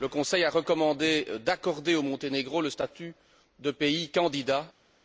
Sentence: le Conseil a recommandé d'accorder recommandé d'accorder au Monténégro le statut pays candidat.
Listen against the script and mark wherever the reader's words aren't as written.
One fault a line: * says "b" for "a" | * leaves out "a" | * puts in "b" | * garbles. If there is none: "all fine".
* leaves out "recommandé d'accorder"
* puts in "de"